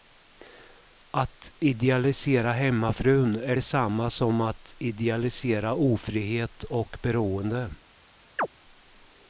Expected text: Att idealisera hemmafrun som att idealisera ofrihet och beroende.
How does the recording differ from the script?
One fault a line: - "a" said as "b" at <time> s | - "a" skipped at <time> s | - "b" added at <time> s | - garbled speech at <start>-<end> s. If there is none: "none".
- "är detsamma" added at 3.4 s